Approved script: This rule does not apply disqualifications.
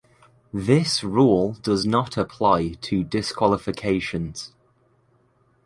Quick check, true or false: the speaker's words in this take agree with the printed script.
false